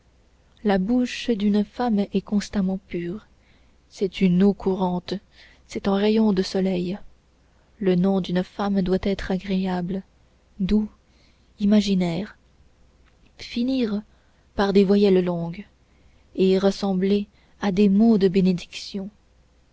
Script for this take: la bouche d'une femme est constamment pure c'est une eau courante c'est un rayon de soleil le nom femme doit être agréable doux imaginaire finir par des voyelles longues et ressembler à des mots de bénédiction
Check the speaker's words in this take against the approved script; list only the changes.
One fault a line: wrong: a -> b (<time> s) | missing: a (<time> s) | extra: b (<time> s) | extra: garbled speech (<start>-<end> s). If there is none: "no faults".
extra: d'une (8.2 s)